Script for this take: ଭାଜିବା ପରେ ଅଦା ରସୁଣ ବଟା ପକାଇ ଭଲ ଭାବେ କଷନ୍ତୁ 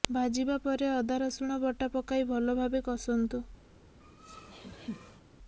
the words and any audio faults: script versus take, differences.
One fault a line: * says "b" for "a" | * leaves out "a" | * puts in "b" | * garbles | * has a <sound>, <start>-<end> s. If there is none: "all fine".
* has a laugh, 4.0-5.2 s